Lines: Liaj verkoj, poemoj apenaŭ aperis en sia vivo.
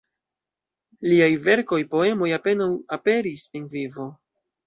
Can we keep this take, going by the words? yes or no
no